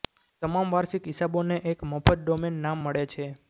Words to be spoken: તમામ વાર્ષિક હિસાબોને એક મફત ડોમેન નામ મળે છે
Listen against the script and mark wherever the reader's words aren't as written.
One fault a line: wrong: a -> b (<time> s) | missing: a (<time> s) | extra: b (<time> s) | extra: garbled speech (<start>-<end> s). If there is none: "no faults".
no faults